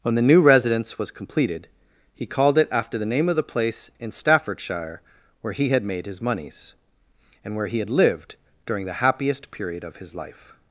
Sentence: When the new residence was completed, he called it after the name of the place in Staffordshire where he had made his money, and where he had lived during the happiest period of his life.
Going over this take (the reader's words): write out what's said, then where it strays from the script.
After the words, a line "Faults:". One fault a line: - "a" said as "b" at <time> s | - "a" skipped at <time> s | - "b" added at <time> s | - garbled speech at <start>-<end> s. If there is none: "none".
When the new residence was completed, he called it after the name of the place in Staffordshire where he had made his moneys, and where he had lived during the happiest period of his life.
Faults:
- "money" said as "moneys" at 6.2 s